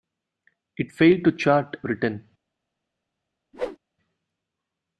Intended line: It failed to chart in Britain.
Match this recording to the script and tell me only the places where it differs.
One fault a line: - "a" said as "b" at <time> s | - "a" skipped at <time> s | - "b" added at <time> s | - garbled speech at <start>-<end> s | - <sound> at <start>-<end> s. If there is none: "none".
- "in" skipped at 1.8 s
- whoosh at 3.5-3.8 s